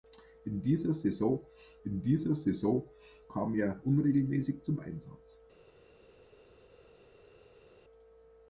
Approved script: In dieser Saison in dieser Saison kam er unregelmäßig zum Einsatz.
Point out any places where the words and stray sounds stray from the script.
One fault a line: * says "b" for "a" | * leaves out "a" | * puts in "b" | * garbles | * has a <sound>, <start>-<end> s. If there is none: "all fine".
all fine